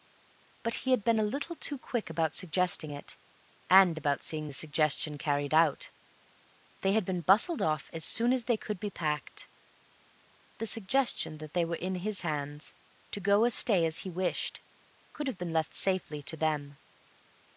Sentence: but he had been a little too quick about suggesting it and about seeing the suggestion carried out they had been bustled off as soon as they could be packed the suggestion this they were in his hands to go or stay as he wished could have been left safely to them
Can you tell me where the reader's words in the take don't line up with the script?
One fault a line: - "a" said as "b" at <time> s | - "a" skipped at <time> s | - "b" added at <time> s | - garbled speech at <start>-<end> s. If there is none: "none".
- "this" said as "that" at 11.4 s